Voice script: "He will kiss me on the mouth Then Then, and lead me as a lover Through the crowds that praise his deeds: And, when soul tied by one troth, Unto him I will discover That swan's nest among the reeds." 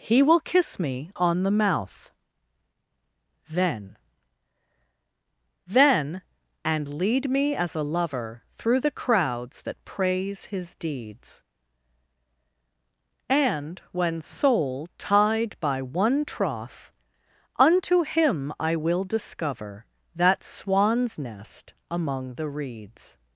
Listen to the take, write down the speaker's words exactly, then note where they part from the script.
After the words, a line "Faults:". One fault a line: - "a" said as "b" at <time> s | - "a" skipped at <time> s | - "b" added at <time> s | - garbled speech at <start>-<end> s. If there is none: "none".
"He will kiss me on the mouth Then Then, and lead me as a lover Through the crowds that praise his deeds: And, when soul tied by one troth, Unto him I will discover That swan's nest among the reeds."
Faults:
none